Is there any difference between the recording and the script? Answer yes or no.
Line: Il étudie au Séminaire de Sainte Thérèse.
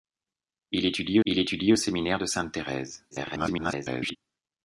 yes